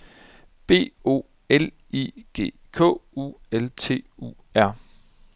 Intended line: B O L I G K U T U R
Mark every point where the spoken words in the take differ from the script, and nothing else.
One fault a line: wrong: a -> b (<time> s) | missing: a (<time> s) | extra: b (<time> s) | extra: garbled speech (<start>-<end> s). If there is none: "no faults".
extra: L (3.5 s)